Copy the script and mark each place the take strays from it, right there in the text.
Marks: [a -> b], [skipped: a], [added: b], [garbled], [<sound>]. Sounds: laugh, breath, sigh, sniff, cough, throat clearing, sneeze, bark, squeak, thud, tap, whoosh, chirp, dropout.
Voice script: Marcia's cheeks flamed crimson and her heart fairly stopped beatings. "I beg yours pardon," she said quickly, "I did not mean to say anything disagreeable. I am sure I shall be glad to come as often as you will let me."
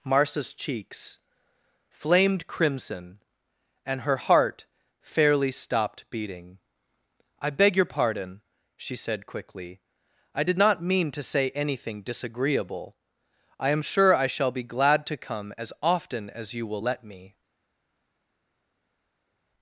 Marcia's cheeks flamed crimson and her heart fairly stopped [beatings. -> beating] "I beg [yours -> your] pardon," she said quickly, "I did not mean to say anything disagreeable. I am sure I shall be glad to come as often as you will let me."